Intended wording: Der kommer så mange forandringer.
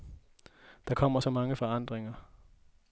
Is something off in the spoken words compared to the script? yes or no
no